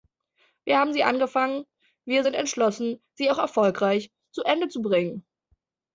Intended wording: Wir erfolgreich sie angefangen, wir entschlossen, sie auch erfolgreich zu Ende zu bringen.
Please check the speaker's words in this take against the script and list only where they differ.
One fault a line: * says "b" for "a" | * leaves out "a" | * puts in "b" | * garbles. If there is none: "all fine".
* says "haben" for "erfolgreich"
* puts in "sind"